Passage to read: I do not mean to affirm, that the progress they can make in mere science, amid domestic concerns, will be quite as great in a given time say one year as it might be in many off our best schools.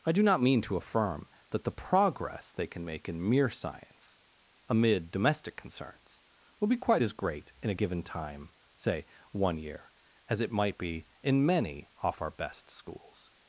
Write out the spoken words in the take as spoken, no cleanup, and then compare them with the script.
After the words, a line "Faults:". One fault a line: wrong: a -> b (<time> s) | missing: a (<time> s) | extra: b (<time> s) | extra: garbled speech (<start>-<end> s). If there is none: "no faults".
I do not mean to affirm, that the progress they can make in mere science, amid domestic concerns, will be quite as great in a given time say one year as it might be in many off our best schools.
Faults:
no faults